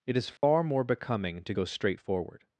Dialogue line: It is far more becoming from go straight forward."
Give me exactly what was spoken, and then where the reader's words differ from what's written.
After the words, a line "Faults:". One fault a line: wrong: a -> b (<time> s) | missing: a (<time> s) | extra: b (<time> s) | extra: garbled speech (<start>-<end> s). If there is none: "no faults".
It is far more becoming to go straight forward."
Faults:
wrong: from -> to (1.4 s)